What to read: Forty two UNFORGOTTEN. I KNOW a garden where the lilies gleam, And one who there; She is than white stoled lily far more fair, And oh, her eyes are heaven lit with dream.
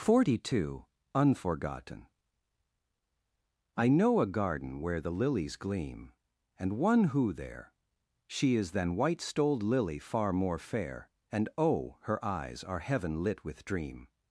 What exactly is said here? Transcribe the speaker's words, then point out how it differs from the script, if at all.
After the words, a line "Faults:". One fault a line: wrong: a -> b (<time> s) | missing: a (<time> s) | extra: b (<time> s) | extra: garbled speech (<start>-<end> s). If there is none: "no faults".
Forty two UNFORGOTTEN. I KNOW a garden where the lilies gleam, And one who there; She is than white stoled lily far more fair, And oh, her eyes are heaven lit with dream.
Faults:
no faults